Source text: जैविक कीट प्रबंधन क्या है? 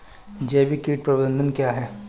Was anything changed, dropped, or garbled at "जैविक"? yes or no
no